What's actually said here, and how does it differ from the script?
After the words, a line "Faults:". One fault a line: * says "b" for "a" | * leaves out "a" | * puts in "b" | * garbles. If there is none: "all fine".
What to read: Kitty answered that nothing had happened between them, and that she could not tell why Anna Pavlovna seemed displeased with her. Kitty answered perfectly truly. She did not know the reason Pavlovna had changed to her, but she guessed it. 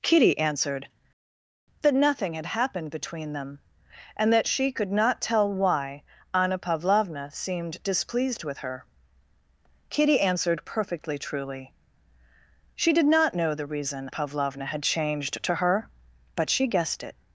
Kitty answered that nothing had happened between them, and that she could not tell why Anna Pavlovna seemed displeased with her. Kitty answered perfectly truly. She did not know the reason Pavlovna had changed to her, but she guessed it.
Faults:
all fine